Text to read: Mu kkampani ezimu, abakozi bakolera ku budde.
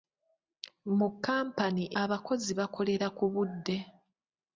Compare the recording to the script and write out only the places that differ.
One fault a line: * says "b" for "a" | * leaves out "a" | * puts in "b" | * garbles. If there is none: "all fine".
* leaves out "ezimu"